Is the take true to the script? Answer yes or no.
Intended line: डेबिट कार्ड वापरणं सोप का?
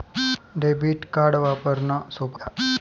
yes